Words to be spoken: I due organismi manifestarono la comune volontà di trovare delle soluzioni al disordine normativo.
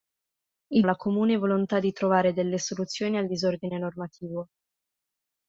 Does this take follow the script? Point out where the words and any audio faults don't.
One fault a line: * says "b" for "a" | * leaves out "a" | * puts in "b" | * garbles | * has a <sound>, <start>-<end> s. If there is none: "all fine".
* leaves out "due organismi manifestarono"